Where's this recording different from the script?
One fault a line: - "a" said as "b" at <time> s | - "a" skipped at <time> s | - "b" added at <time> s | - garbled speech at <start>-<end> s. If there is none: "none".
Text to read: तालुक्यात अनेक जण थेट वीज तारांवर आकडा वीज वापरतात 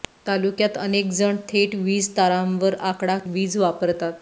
none